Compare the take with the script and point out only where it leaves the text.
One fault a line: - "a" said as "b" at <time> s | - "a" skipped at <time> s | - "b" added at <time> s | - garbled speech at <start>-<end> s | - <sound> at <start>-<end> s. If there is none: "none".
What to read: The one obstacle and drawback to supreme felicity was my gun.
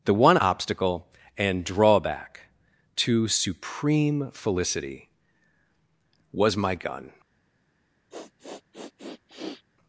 - sniff at 8.1-9.6 s